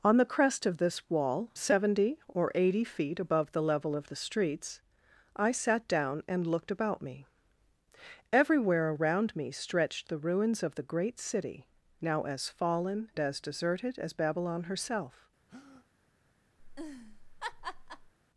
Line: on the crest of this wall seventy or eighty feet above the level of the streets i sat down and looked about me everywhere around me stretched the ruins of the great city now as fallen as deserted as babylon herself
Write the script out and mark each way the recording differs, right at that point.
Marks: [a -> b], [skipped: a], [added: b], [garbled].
on the crest of this wall seventy or eighty feet above the level of the streets i sat down and looked about me everywhere around me stretched the ruins of the great city now as fallen as deserted as babylon herself